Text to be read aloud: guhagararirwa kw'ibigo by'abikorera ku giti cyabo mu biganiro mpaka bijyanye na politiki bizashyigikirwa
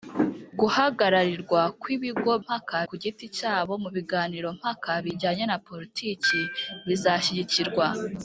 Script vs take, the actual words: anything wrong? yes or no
yes